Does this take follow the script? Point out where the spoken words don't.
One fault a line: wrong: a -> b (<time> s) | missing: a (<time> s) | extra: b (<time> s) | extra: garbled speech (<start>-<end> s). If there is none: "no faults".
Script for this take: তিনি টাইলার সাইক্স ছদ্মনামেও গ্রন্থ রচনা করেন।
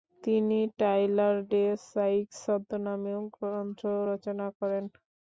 extra: ডে (1.5 s)